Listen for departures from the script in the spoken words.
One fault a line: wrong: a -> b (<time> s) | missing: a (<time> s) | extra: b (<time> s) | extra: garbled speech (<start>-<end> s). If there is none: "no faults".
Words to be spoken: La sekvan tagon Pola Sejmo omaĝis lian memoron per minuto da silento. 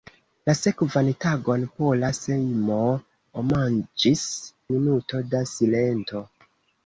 missing: lian memoron per (4.2 s)